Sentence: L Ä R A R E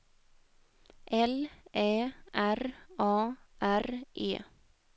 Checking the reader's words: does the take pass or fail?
pass